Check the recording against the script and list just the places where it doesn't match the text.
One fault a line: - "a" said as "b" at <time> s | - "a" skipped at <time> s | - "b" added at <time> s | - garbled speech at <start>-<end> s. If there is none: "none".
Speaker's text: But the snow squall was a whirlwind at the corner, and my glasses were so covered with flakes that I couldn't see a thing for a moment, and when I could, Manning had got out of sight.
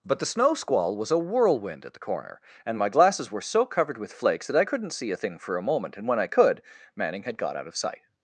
none